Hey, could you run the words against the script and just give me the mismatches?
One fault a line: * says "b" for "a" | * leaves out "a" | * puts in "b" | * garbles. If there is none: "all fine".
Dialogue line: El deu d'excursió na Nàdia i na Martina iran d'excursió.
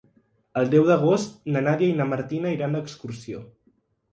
* says "d'agost" for "d'excursió"